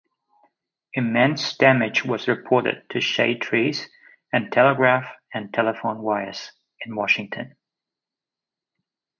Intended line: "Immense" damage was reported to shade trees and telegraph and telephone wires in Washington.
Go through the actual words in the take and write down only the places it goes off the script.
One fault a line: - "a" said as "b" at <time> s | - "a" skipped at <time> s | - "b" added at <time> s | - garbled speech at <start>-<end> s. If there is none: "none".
none